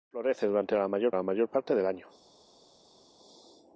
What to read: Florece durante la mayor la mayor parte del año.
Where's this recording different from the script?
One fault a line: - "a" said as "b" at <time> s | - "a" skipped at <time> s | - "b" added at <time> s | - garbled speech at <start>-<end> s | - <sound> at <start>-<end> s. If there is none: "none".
none